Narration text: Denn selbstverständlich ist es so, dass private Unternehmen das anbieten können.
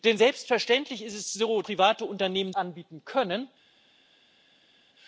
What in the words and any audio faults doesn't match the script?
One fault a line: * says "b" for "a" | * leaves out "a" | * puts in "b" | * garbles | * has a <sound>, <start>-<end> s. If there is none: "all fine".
* leaves out "dass"
* leaves out "das"